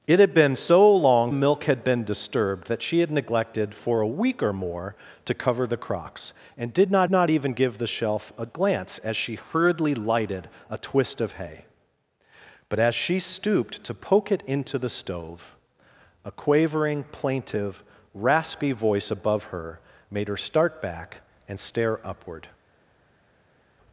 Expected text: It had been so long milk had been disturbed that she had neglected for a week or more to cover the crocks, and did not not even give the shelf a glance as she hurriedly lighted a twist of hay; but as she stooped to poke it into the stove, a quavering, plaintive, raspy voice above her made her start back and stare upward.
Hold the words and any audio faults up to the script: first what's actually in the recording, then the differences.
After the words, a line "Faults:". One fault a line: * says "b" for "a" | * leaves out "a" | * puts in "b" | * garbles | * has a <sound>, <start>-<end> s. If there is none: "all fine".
It had been so long milk had been disturbed that she had neglected for a week or more to cover the crocks, and did not not even give the shelf a glance as she hurriedly lighted a twist of hay; but as she stooped to poke it into the stove, a quavering, plaintive, raspy voice above her made her start back and stare upward.
Faults:
all fine